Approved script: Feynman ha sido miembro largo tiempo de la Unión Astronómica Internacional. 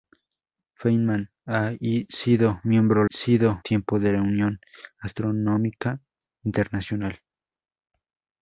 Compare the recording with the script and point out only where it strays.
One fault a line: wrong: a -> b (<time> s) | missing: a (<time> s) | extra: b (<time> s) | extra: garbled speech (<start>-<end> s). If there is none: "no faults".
wrong: largo -> sido (3.1 s)